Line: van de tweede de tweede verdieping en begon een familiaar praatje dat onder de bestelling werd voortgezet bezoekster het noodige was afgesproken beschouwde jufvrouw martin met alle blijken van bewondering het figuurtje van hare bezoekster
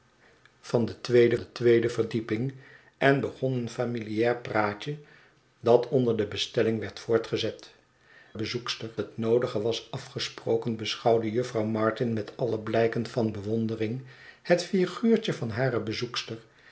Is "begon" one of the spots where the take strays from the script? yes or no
no